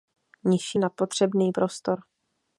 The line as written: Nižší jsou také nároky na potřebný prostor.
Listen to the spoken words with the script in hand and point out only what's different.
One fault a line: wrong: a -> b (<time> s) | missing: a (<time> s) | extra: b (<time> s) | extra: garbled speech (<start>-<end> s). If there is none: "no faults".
missing: jsou také nároky (0.8 s)